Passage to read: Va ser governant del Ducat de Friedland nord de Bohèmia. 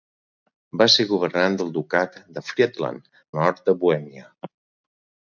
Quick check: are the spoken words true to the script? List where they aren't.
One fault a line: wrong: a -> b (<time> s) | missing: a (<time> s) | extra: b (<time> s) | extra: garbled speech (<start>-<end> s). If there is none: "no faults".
no faults